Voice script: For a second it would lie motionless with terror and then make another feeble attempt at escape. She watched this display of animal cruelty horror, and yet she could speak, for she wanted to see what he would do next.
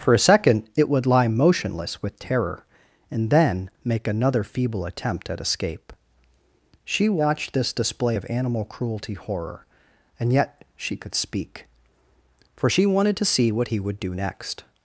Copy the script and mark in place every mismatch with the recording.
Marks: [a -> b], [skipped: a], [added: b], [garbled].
For a second it would lie motionless with terror and then make another feeble attempt at escape. She watched this display of animal cruelty horror, and yet she could speak, for she wanted to see what he would do next.